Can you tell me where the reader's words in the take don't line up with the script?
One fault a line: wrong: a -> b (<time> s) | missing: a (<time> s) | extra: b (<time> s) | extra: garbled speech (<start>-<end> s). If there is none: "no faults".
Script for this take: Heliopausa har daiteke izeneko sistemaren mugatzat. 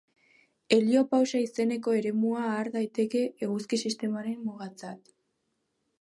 extra: izeneko eremua (1.5 s)
wrong: izeneko -> eguzki (3.5 s)